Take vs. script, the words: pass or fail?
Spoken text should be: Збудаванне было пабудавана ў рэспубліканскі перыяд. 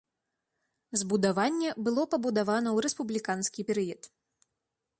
pass